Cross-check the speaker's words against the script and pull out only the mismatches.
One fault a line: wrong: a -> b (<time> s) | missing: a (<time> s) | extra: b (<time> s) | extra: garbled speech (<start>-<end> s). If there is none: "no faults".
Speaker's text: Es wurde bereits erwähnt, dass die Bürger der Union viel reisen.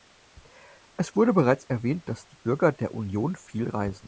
no faults